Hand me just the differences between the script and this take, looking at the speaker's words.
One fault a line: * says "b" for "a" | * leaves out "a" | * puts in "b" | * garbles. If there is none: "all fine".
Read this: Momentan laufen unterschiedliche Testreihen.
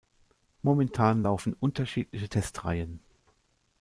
all fine